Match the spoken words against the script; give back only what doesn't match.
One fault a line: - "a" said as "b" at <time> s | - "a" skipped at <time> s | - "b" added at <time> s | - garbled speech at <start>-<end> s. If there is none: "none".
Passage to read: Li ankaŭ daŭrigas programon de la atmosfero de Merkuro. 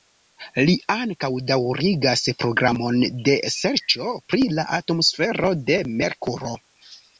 - "serĉo pri" added at 3.6 s